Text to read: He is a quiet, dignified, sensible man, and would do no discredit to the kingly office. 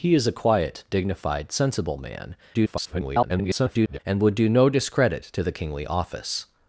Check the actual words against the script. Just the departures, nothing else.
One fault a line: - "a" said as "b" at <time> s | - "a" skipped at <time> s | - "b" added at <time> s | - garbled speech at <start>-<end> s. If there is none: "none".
- garbled speech at 2.5-4.0 s